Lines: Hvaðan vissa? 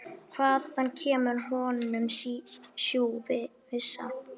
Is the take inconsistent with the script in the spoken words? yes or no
yes